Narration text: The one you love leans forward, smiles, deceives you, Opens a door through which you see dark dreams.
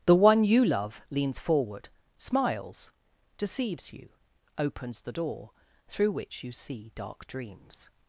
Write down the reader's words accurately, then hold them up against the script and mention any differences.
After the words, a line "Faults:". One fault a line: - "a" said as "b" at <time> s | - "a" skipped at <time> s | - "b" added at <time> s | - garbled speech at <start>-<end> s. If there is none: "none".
The one you love leans forward, smiles, deceives you, Opens the door through which you see dark dreams.
Faults:
- "a" said as "the" at 5.0 s